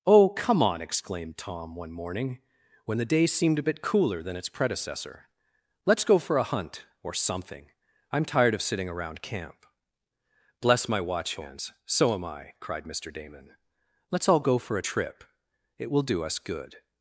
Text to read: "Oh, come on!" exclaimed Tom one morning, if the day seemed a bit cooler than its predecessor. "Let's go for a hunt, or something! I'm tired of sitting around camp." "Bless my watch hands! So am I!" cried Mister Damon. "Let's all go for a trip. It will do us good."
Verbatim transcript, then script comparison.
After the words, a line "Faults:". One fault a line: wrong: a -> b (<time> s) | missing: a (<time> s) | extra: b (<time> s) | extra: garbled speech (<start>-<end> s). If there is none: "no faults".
"Oh, come on!" exclaimed Tom one morning, when the day seemed a bit cooler than its predecessor. "Let's go for a hunt, or something! I'm tired of sitting around camp." "Bless my watch hands! So am I!" cried Mister Damon. "Let's all go for a trip. It will do us good."
Faults:
wrong: if -> when (2.9 s)